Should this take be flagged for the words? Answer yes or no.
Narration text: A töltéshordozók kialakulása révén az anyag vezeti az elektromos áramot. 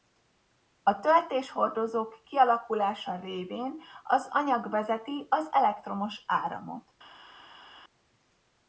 no